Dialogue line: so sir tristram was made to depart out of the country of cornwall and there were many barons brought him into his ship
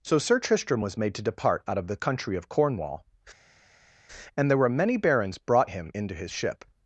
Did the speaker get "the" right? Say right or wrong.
right